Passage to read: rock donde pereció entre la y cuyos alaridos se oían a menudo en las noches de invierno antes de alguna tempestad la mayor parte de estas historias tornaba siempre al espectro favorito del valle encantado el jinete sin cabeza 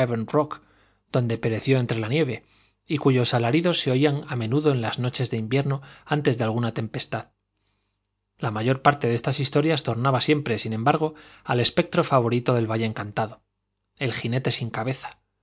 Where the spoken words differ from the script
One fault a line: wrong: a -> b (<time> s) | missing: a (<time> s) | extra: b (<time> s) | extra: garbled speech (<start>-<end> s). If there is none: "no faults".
extra: nieve (2.1 s)
extra: sin embargo (10.6 s)